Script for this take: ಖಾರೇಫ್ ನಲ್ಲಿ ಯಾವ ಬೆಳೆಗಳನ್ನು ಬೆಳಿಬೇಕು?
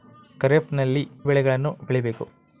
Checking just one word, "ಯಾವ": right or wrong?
wrong